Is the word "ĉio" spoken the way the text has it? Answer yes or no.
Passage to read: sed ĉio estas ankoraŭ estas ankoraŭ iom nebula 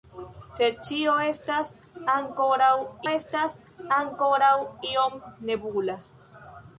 yes